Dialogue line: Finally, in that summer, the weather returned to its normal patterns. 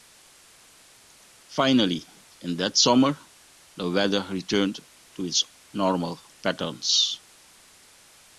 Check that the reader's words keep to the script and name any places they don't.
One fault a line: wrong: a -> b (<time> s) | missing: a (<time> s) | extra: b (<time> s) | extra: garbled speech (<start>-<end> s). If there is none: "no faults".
no faults